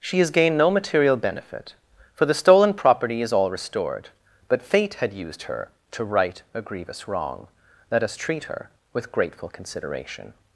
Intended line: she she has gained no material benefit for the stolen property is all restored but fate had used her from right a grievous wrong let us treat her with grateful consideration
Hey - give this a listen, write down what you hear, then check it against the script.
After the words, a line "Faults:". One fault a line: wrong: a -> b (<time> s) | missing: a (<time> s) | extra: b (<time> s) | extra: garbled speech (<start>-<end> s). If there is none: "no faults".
she has gained no material benefit for the stolen property is all restored but fate had used her to right a grievous wrong let us treat her with grateful consideration
Faults:
missing: she (0.2 s)
wrong: from -> to (5.9 s)